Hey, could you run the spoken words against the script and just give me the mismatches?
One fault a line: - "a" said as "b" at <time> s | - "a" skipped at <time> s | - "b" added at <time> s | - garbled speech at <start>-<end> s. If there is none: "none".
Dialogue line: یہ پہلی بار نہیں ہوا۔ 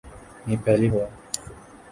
- "بار نہیں" skipped at 0.9 s